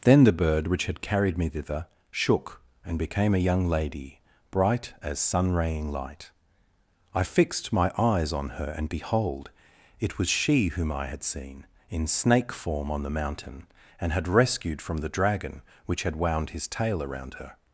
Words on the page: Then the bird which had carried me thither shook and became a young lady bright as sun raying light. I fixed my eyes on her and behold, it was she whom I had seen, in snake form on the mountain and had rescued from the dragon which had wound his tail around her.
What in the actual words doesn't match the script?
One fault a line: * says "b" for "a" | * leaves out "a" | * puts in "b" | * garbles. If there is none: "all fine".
all fine